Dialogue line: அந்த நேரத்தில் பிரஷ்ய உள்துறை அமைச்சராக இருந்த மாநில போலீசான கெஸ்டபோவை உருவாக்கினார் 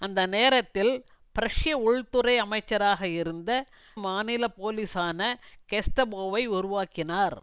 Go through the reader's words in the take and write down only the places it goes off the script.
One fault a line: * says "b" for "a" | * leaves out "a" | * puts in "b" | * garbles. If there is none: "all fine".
all fine